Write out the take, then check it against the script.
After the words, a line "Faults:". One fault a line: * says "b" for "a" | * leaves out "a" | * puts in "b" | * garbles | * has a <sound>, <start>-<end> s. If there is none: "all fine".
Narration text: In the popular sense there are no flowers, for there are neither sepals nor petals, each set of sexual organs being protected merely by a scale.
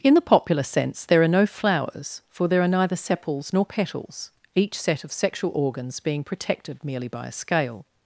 In the popular sense there are no flowers, for there are neither sepals nor petals, each set of sexual organs being protected merely by a scale.
Faults:
all fine